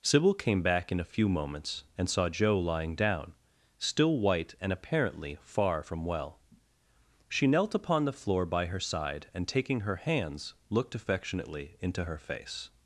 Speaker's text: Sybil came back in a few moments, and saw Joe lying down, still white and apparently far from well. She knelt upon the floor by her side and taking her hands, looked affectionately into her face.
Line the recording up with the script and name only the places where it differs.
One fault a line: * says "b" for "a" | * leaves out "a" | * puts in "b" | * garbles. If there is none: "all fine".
all fine